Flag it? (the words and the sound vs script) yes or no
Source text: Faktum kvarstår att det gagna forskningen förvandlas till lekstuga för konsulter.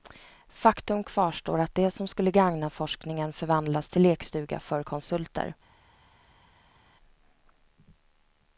yes